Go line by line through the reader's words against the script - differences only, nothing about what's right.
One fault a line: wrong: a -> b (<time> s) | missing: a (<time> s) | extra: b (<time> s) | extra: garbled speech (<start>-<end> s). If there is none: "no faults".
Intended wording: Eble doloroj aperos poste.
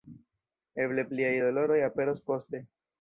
extra: pliaj (1.1 s)